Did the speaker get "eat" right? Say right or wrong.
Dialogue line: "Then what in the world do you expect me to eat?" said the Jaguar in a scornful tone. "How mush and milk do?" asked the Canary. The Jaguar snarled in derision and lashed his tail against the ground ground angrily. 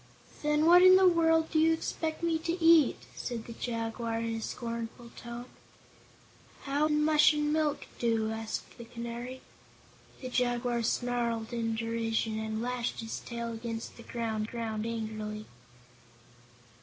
right